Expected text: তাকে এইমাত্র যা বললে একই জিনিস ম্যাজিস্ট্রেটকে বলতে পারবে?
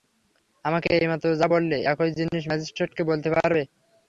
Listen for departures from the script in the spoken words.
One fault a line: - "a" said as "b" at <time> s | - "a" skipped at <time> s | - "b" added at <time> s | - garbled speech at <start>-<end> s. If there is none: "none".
- "তাকে" said as "আমাকে" at 0.7 s